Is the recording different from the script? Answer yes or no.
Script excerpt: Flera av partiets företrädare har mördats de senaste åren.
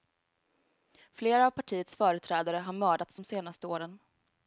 no